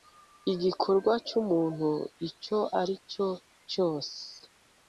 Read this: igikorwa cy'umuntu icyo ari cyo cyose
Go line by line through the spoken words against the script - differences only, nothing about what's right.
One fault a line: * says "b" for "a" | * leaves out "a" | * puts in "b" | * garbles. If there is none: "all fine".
all fine